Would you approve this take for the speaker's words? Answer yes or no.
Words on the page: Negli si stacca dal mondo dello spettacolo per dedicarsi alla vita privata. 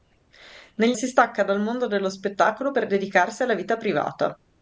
yes